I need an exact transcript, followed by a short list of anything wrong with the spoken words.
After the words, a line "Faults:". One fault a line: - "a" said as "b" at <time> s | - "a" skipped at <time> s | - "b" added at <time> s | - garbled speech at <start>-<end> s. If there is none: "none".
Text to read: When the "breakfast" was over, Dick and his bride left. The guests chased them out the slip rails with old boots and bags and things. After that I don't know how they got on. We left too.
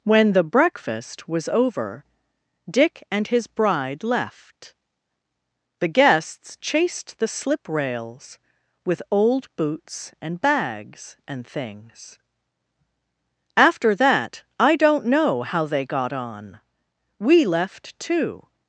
When the "breakfast" was over, Dick and his bride left. The guests chased the slip rails with old boots and bags and things. After that I don't know how they got on. We left too.
Faults:
- "them out" skipped at 7.2 s